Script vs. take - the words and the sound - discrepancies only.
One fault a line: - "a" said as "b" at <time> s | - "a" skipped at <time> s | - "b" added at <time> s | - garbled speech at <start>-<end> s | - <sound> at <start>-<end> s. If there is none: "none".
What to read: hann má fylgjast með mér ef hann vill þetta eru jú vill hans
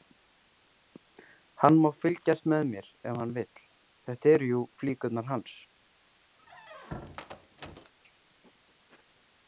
- "vill" said as "flíkurnar" at 4.8 s
- squeak at 6.4-7.9 s